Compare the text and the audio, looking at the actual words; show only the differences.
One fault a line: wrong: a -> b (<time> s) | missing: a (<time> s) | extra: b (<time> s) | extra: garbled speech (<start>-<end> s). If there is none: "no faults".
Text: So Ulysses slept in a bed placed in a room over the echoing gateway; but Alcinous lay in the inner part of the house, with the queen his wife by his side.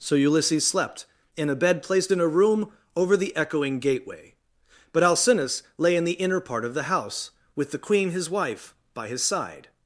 no faults